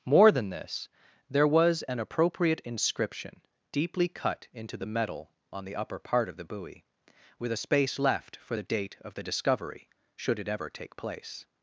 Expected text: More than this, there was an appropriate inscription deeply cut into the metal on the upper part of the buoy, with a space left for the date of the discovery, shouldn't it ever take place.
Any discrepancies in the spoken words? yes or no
yes